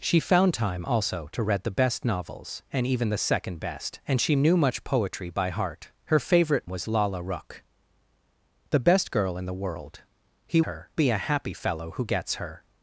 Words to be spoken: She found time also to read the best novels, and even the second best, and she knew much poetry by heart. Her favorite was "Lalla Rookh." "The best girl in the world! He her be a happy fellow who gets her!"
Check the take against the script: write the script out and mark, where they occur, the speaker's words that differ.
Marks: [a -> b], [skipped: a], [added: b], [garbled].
She found time also to read the best novels, and even the second best, and she knew much poetry by heart. Her favorite was "Lalla Rookh." "The best girl in the world! He her be a happy fellow who gets her!"